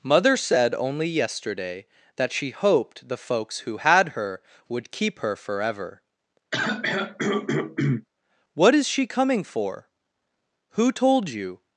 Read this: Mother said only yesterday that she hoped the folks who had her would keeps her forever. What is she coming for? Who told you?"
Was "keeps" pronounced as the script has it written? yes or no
no